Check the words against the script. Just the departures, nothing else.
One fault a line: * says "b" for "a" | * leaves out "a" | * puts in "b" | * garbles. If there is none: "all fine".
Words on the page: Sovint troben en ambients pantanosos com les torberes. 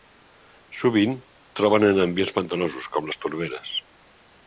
all fine